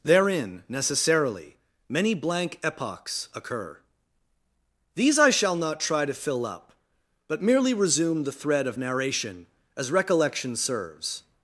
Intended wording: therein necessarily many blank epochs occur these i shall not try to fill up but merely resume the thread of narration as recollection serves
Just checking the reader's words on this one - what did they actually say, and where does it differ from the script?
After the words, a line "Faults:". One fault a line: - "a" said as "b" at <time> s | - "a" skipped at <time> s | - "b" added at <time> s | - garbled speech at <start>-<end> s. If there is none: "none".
therein necessarily many blank epochs occur these i shall not try to fill up but merely resume the thread of narration as recollection serves
Faults:
none